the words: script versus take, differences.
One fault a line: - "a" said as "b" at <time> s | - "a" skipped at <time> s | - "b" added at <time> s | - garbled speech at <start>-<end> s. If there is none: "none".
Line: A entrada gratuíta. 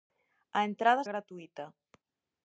none